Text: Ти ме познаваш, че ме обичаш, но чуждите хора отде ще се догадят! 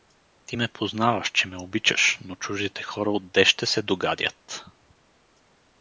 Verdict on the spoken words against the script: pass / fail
pass